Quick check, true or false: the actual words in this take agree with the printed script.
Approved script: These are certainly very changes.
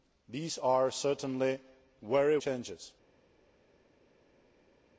true